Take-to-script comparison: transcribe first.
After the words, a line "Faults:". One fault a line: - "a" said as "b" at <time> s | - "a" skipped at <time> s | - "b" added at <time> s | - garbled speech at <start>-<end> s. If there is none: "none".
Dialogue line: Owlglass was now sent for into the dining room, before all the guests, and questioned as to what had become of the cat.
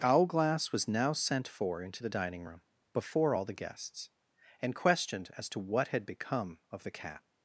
Owlglass was now sent for into the dining room, before all the guests, and questioned as to what had become of the cat.
Faults:
none